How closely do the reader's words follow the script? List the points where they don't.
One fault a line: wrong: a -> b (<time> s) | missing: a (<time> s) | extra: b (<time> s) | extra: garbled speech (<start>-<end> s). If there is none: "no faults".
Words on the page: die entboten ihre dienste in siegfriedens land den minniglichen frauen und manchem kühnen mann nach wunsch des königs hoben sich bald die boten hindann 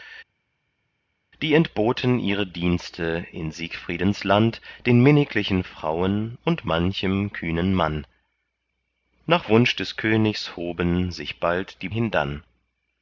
missing: boten (11.9 s)